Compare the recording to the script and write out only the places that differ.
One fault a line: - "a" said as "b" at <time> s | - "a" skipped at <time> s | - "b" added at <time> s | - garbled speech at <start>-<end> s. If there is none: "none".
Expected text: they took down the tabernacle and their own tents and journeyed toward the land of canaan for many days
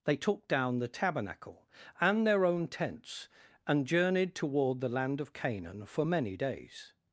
none